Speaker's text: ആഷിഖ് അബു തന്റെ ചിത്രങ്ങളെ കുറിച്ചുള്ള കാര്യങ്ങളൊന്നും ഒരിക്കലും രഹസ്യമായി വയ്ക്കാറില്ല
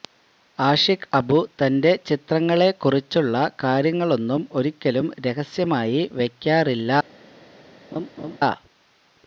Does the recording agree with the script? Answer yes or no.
yes